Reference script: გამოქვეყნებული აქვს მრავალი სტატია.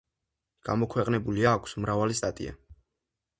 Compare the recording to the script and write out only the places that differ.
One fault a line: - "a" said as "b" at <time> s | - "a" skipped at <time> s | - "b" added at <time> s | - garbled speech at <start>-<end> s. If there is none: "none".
none